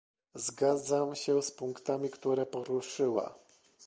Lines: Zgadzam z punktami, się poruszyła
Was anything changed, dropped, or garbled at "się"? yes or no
yes